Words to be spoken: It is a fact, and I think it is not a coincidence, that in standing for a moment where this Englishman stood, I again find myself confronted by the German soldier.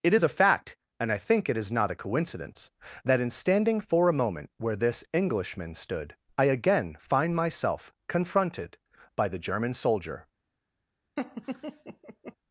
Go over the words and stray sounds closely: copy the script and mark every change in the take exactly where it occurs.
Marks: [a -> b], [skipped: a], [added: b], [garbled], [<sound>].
It is a fact, and I think it is not a coincidence, that in standing for a moment where this Englishman stood, I again find myself confronted by the German soldier. [laugh]